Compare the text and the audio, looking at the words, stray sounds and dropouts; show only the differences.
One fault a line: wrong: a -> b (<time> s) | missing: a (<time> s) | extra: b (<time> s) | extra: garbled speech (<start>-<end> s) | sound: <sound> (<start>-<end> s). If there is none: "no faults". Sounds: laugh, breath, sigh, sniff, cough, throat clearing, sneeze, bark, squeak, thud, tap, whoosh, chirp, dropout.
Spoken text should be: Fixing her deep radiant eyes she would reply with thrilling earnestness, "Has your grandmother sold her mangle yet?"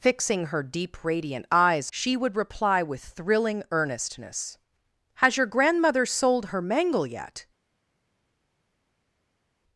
no faults